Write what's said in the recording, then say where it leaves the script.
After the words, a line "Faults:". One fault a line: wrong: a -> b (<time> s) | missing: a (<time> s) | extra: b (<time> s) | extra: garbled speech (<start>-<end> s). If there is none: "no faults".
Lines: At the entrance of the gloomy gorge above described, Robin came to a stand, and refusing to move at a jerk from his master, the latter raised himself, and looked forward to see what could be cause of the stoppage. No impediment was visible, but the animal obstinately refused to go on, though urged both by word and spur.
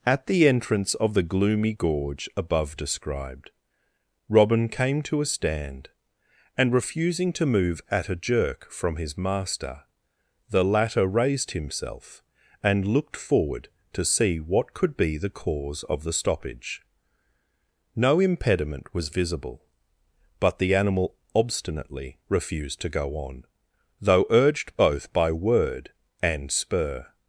At the entrance of the gloomy gorge above described, Robin came to a stand, and refusing to move at a jerk from his master, the latter raised himself, and looked forward to see what could be the cause of the stoppage. No impediment was visible, but the animal obstinately refused to go on, though urged both by word and spur.
Faults:
extra: the (15.2 s)